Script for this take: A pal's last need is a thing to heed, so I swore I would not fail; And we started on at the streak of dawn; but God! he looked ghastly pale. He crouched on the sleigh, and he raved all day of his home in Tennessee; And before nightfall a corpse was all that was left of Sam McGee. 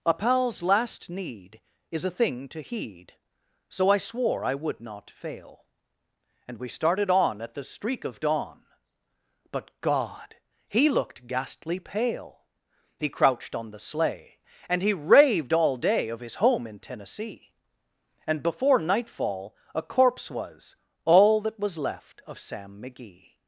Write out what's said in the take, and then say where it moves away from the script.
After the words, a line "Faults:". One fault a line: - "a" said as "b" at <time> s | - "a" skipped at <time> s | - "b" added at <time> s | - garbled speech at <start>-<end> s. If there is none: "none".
A pal's last need is a thing to heed, so I swore I would not fail; And we started on at the streak of dawn; but God! he looked ghastly pale. He crouched on the sleigh, and he raved all day of his home in Tennessee; And before nightfall a corpse was all that was left of Sam McGee.
Faults:
none